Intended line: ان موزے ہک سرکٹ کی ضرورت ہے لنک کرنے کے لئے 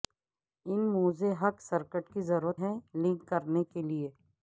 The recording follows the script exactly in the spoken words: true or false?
true